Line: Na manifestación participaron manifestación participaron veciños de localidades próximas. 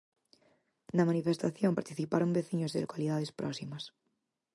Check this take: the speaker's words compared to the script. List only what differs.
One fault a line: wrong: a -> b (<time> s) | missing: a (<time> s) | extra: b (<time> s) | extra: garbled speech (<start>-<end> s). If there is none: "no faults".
missing: manifestación participaron (2.3 s)